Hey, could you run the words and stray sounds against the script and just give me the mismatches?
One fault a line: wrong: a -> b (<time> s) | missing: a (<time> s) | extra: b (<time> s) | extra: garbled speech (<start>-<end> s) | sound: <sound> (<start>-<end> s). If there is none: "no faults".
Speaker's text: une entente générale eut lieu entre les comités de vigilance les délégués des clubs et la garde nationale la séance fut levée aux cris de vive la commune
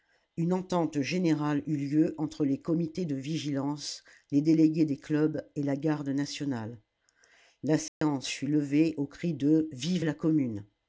sound: dropout (7.9-8.0 s)